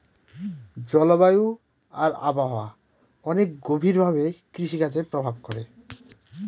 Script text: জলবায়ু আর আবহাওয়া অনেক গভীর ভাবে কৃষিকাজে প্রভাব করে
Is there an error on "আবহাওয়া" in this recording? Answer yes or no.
no